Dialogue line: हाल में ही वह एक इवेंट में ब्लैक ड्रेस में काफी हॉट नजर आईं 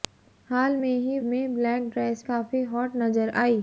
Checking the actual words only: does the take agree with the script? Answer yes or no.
no